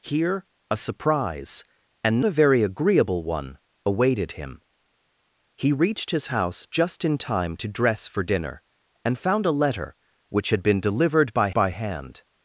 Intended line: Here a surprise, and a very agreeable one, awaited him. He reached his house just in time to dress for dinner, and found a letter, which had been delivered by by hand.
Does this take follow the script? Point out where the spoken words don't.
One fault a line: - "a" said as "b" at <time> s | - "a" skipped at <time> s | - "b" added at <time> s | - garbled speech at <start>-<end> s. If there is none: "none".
none